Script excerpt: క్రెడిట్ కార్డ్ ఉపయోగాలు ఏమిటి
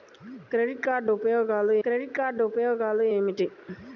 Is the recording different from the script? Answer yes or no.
yes